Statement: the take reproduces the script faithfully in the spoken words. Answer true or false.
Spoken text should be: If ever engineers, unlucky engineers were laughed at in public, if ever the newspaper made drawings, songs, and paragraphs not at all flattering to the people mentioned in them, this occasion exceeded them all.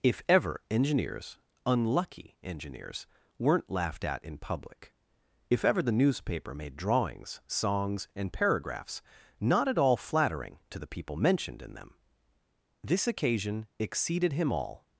false